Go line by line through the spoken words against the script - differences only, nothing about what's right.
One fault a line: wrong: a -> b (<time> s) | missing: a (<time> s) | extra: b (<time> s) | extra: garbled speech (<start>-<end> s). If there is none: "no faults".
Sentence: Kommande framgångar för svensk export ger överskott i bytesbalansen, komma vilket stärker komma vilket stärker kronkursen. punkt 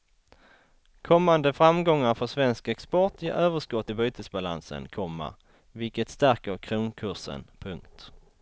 missing: komma vilket stärker (6.6 s)